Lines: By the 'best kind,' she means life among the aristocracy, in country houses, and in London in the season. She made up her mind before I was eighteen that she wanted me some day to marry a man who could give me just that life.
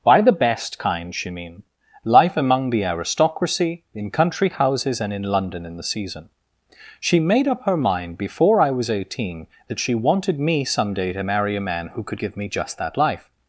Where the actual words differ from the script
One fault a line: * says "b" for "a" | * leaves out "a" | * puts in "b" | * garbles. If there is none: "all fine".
* says "mean" for "means"